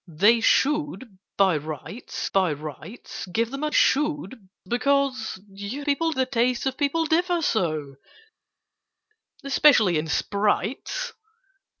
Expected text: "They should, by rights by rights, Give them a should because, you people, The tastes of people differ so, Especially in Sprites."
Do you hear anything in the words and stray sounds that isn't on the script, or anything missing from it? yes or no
no